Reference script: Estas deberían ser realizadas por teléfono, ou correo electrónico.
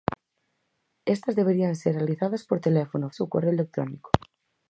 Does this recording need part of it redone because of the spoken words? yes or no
no